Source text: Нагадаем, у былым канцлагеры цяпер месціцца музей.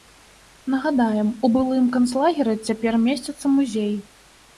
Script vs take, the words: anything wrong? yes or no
no